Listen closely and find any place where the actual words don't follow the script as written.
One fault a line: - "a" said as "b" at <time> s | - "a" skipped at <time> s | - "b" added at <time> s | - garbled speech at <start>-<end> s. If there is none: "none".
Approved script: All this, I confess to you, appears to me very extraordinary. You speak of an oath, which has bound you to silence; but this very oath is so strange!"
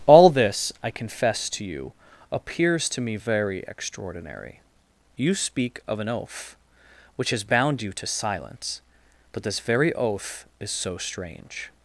none